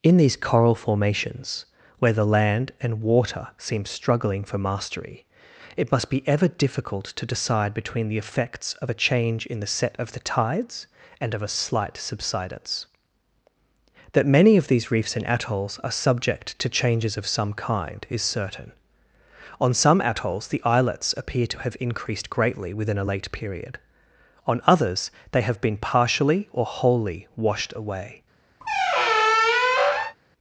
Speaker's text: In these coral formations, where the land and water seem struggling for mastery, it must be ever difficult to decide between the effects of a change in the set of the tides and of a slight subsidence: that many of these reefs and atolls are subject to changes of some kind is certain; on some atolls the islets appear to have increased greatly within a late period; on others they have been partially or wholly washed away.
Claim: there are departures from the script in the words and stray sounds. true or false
true